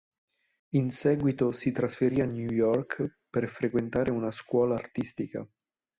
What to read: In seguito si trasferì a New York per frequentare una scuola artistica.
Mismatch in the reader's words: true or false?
false